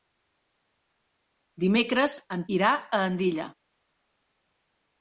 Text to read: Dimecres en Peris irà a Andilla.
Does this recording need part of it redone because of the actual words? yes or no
yes